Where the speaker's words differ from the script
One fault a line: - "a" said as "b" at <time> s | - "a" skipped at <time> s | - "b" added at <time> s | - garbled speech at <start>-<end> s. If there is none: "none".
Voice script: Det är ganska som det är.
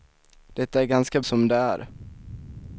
none